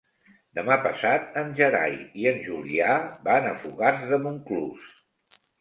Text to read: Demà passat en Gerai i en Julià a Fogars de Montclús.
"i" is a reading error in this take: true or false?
false